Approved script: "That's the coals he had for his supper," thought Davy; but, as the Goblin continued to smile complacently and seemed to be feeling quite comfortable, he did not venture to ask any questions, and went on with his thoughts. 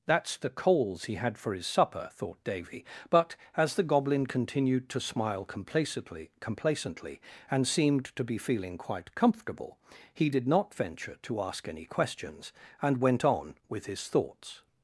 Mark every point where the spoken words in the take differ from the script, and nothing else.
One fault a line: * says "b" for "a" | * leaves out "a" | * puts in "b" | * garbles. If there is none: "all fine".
* puts in "complacently"